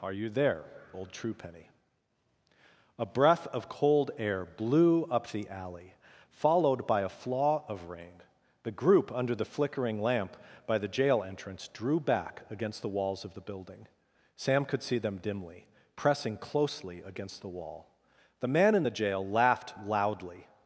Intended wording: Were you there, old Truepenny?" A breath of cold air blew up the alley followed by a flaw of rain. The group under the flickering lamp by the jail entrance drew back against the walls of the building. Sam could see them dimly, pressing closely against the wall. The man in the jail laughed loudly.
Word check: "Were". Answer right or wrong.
wrong